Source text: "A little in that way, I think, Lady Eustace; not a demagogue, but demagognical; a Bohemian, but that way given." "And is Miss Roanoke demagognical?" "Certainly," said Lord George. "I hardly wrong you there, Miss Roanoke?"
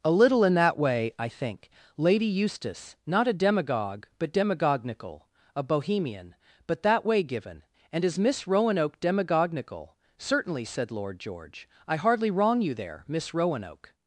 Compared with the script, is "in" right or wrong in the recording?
right